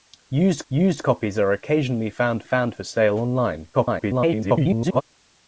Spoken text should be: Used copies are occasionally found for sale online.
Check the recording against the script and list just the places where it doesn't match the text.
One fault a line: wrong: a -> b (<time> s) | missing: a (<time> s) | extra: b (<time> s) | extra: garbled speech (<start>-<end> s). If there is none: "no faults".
extra: used (0.7 s)
extra: found (2.4 s)
extra: garbled speech (3.7-5.0 s)